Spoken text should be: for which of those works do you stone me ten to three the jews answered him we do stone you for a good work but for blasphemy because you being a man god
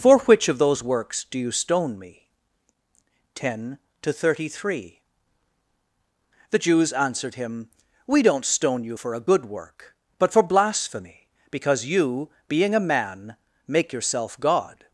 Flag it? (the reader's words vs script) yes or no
yes